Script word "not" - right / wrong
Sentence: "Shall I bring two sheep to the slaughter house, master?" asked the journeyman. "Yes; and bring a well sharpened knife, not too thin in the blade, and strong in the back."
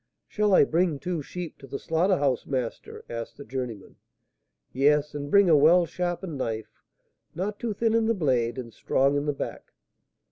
right